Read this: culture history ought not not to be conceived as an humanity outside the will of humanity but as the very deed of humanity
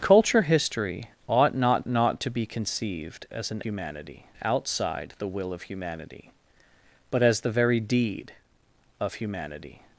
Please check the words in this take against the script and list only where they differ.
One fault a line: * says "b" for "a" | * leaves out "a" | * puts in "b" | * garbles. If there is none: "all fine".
all fine